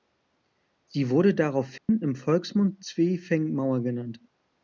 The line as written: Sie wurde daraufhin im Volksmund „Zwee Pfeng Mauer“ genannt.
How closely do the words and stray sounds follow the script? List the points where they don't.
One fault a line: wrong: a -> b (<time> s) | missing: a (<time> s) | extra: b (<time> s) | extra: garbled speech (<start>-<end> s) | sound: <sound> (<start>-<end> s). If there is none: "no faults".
sound: dropout (1.8-1.9 s)